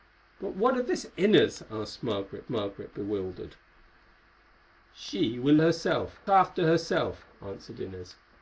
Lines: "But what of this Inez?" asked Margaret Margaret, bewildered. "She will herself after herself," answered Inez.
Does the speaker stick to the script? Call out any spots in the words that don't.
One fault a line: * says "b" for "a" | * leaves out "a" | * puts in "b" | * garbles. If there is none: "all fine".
all fine